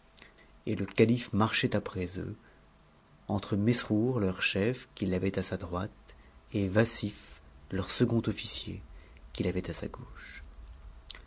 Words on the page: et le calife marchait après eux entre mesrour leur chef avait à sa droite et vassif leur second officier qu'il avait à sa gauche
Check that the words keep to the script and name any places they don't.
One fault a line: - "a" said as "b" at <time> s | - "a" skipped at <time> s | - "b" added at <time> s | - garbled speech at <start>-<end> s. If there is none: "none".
- "qu'il" added at 5.0 s